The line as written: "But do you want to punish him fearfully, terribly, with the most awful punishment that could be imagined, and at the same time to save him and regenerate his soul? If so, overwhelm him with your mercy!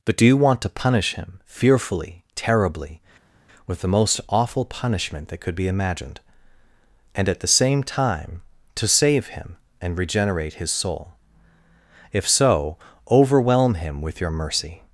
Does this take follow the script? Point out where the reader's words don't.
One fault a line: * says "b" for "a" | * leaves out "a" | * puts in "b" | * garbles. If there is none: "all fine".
all fine